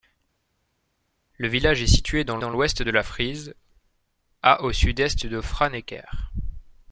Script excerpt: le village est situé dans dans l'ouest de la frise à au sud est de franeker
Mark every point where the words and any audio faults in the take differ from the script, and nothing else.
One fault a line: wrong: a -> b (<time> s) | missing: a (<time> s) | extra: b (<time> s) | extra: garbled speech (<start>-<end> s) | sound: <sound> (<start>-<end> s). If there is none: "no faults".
no faults